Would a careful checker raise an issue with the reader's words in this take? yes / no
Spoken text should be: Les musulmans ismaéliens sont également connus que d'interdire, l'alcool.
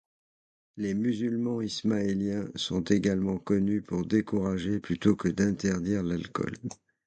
yes